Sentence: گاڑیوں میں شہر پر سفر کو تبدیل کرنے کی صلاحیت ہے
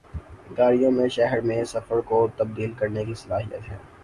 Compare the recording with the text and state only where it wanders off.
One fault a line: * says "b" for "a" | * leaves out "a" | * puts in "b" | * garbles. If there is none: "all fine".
* says "میں" for "پر"